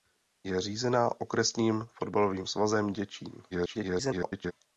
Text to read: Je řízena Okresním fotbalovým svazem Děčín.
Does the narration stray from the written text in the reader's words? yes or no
yes